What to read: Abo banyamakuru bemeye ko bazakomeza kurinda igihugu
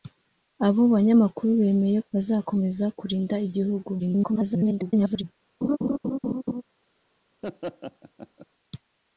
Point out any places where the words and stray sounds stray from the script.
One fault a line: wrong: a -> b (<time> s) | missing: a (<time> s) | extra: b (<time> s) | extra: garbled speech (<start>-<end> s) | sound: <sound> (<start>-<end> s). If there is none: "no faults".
missing: ko (2.0 s)
extra: garbled speech (4.0-5.2 s)
sound: laugh (5.6-6.6 s)
sound: laugh (7.4-8.5 s)